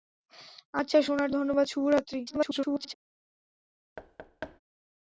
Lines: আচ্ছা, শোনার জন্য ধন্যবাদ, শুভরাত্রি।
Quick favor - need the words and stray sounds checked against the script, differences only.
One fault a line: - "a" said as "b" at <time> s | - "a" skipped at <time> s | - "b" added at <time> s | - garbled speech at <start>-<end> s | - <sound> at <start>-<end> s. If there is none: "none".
- "জন্য" skipped at 1.3 s
- garbled speech at 2.3-2.9 s
- thud at 4.0-4.6 s